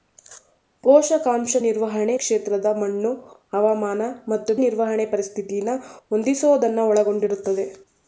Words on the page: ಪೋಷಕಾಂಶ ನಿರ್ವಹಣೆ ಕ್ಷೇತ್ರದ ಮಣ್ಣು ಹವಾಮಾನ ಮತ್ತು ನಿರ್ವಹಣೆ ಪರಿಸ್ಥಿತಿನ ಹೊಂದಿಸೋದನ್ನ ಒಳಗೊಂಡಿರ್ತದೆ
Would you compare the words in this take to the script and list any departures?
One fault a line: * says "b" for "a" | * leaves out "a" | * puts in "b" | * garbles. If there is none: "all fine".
all fine